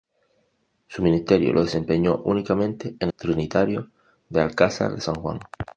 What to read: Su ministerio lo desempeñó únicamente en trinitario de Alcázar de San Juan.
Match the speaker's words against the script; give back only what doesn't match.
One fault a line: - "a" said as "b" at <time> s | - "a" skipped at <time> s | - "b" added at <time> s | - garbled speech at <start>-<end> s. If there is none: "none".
none